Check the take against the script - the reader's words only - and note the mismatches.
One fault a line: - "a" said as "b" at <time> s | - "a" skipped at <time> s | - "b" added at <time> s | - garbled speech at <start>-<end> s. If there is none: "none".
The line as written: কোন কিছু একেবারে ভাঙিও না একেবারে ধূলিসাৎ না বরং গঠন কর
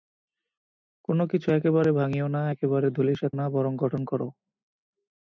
none